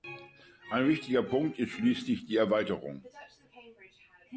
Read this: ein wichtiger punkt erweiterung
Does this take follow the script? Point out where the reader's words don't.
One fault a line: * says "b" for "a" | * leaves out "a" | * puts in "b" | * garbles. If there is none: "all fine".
* puts in "ist schließlich die"